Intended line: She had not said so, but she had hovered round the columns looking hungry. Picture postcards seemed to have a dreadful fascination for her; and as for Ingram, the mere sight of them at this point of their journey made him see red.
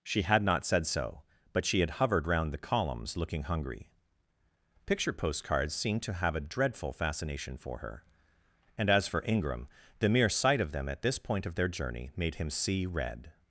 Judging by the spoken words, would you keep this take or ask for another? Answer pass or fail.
pass